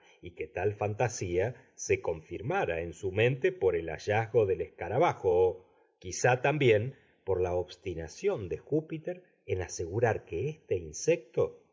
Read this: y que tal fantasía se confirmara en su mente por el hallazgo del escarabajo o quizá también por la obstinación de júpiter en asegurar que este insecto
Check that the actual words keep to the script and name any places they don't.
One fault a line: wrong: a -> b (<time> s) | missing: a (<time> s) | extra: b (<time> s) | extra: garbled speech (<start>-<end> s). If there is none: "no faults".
no faults